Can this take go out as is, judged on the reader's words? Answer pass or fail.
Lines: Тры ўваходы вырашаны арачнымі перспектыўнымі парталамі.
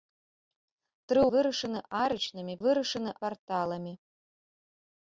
fail